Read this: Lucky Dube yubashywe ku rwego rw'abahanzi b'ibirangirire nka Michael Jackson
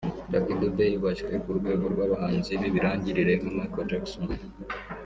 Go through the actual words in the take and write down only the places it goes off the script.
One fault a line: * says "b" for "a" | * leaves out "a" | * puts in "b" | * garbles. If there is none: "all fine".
all fine